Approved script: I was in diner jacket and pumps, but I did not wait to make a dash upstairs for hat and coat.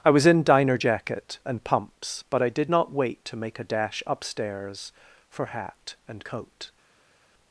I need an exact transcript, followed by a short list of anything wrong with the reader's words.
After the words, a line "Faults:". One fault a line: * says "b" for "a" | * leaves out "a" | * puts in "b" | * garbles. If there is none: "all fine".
I was in diner jacket and pumps, but I did not wait to make a dash upstairs for hat and coat.
Faults:
all fine